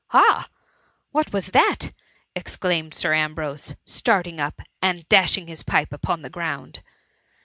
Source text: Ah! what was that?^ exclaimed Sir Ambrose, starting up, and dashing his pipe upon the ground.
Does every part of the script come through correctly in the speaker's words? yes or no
yes